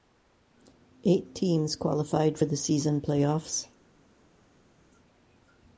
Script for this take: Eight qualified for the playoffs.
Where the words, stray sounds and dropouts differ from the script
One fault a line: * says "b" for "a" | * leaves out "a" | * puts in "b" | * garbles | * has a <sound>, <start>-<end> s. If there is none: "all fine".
* puts in "teams"
* puts in "season"